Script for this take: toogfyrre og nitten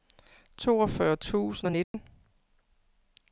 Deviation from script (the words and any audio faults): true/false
true